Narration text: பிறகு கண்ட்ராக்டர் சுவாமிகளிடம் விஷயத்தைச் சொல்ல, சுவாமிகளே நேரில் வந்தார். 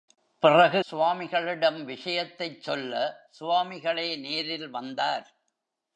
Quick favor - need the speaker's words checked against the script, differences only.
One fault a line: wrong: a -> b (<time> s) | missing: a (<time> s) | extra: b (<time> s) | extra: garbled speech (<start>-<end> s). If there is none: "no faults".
missing: கண்ட்ராக்டர் (0.8 s)